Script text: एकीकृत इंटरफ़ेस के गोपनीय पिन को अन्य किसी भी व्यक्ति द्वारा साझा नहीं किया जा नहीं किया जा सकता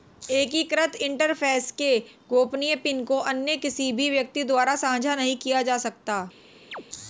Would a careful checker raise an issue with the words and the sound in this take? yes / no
yes